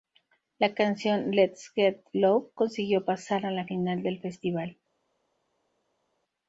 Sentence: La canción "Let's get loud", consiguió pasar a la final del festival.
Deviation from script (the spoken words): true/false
false